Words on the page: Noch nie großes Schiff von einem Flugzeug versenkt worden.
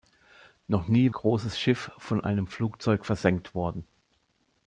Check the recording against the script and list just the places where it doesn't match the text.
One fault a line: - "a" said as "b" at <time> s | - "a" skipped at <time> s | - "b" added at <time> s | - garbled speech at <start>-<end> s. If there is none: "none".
none